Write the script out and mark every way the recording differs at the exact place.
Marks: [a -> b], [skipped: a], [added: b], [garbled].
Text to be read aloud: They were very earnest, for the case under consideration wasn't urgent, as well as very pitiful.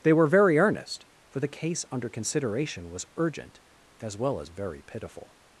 They were very earnest, for the case under consideration [wasn't -> was] urgent, as well as very pitiful.